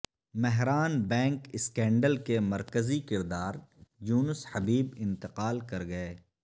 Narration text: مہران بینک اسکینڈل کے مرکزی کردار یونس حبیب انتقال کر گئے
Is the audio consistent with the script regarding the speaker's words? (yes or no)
yes